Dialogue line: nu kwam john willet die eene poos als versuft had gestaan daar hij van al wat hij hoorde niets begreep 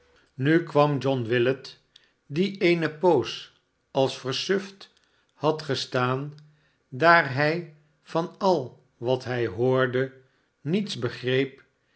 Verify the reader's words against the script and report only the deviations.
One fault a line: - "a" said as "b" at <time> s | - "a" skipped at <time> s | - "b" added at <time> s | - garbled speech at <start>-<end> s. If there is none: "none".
none